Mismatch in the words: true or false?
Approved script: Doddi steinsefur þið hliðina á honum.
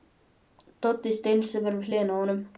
true